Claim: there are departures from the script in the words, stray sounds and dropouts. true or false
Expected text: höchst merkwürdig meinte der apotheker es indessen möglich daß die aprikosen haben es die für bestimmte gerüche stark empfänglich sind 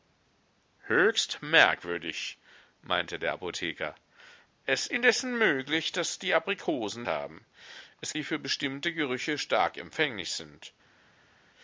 false